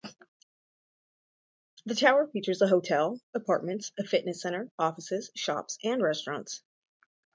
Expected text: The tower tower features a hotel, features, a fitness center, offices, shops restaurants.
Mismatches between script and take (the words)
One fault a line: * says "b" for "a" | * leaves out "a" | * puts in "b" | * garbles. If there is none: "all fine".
* leaves out "tower"
* says "apartments" for "features"
* puts in "and"